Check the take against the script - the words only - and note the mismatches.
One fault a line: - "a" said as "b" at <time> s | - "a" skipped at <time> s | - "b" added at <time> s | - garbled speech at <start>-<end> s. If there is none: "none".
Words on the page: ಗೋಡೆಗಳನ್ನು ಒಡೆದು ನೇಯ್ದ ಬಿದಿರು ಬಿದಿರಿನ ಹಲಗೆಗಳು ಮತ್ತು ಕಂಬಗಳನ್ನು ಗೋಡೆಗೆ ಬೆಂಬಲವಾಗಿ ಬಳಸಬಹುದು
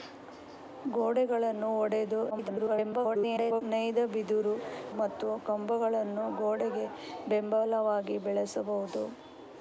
- garbled speech at 2.3-3.6 s
- "ಬಿದಿರಿನ ಹಲಗೆಗಳು" skipped at 4.5 s